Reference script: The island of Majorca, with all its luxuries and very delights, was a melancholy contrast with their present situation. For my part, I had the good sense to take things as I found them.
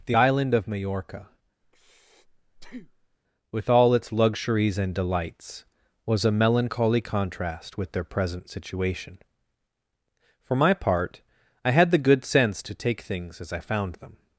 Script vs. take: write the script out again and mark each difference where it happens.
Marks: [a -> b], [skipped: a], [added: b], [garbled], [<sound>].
The island of Majorca, [breath] with all its luxuries and [skipped: very] delights, was a melancholy contrast with their present situation. For my part, I had the good sense to take things as I found them.